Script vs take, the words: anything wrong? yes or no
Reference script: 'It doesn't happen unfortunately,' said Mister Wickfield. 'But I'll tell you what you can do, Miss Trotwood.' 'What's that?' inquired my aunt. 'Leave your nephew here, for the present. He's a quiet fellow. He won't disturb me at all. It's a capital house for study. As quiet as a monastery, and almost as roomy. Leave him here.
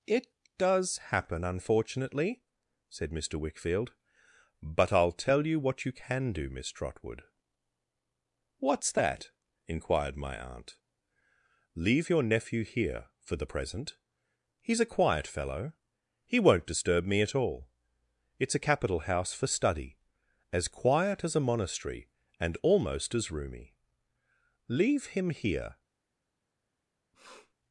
yes